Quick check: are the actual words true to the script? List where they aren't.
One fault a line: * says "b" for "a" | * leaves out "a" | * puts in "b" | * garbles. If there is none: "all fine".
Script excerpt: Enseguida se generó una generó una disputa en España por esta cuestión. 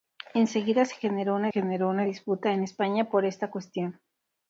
all fine